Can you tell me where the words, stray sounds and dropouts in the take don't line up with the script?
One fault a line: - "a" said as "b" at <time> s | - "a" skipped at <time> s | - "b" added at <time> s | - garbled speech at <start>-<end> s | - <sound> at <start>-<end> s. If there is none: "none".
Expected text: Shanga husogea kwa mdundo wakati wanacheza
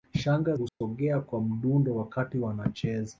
- dropout at 0.7-0.8 s